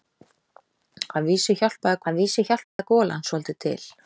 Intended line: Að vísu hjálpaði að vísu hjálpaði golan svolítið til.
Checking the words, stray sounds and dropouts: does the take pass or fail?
fail